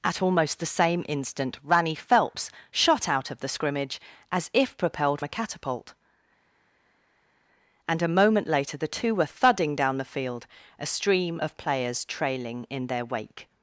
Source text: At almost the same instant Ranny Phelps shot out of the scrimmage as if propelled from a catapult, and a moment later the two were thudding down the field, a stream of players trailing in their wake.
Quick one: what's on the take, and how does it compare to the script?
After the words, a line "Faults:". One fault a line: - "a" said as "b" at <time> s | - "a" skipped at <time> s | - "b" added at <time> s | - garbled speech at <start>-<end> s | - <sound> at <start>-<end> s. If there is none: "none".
At almost the same instant Ranny Phelps shot out of the scrimmage as if propelled a catapult, and a moment later the two were thudding down the field, a stream of players trailing in their wake.
Faults:
- "from" skipped at 5.2 s